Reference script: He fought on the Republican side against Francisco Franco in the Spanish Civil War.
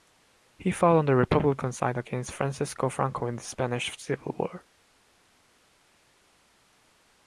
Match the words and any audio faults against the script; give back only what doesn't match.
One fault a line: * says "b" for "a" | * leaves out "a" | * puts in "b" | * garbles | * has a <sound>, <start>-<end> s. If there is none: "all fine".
all fine